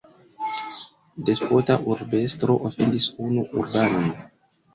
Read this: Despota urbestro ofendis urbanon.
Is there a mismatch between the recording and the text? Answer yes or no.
yes